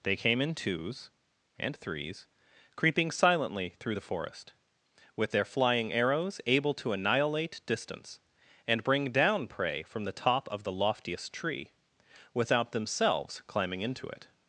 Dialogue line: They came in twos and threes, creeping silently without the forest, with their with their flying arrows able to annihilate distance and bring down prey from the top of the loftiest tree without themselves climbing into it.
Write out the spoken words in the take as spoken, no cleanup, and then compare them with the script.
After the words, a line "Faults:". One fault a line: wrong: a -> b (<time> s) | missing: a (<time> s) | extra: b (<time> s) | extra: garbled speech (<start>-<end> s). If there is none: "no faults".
They came in twos and threes, creeping silently through the forest, with their flying arrows able to annihilate distance and bring down prey from the top of the loftiest tree without themselves climbing into it.
Faults:
wrong: without -> through (3.8 s)
missing: with their (5.5 s)